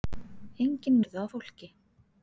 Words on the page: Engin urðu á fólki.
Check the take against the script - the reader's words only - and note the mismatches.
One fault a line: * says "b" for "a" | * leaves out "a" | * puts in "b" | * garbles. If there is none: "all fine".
all fine